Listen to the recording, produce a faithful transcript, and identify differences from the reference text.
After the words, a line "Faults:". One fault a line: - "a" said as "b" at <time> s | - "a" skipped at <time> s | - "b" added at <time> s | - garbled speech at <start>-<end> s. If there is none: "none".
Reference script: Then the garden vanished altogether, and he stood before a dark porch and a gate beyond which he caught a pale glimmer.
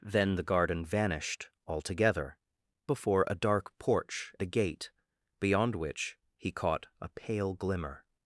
Then the garden vanished altogether, before a dark porch a gate beyond which he caught a pale glimmer.
Faults:
- "and he stood" skipped at 2.4 s
- "and" skipped at 4.3 s